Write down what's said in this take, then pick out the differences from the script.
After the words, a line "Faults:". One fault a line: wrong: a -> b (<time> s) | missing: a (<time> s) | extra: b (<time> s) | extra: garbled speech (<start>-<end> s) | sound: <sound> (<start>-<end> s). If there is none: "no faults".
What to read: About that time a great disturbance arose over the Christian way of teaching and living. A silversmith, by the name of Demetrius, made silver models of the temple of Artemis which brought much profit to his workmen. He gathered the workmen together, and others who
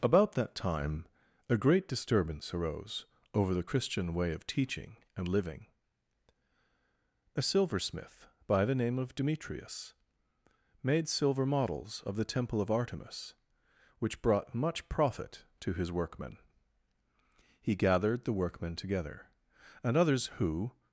About that time a great disturbance arose over the Christian way of teaching and living. A silversmith, by the name of Demetrius, made silver models of the temple of Artemis which brought much profit to his workmen. He gathered the workmen together, and others who
Faults:
no faults